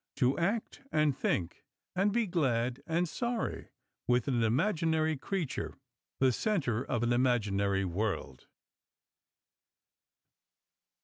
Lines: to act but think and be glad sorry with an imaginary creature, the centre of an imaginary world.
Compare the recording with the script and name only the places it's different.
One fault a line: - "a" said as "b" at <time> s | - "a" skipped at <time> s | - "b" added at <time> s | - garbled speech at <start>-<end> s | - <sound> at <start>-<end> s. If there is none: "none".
- "but" said as "and" at 0.9 s
- "and" added at 2.9 s